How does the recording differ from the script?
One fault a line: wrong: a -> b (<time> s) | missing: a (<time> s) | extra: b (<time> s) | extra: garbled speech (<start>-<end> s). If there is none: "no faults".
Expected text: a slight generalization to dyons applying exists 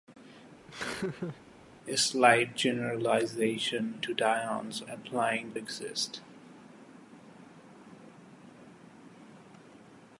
no faults